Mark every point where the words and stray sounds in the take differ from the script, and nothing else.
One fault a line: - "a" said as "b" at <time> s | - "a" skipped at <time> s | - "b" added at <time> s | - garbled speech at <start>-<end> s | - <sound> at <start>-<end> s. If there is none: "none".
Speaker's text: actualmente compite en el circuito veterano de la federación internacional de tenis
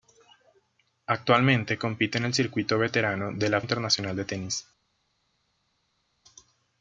- "federación" skipped at 3.6 s